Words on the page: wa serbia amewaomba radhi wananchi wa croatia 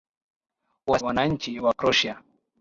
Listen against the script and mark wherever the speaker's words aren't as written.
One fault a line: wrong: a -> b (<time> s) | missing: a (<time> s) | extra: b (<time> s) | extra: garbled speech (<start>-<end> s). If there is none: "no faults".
missing: serbia amewaomba radhi (1.0 s)